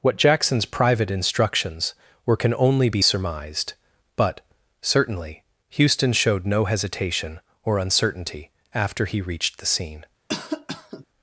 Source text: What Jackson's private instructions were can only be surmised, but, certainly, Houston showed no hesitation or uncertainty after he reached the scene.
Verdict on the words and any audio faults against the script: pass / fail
fail